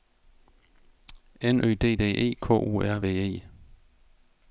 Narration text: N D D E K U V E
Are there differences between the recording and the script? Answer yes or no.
yes